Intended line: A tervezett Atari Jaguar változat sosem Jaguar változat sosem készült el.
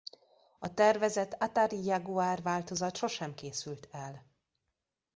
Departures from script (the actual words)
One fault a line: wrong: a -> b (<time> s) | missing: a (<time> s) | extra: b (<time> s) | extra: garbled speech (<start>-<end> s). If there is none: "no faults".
missing: Jaguar változat sosem (3.4 s)